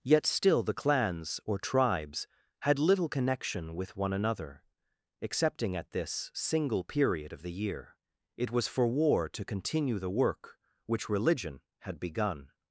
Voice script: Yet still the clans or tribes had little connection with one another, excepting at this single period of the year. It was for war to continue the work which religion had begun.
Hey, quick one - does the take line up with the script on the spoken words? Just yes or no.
yes